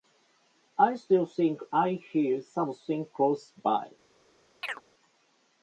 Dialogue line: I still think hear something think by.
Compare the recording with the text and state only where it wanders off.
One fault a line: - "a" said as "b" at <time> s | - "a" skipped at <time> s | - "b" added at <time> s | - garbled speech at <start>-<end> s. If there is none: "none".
- "I" added at 1.7 s
- "think" said as "close" at 3.0 s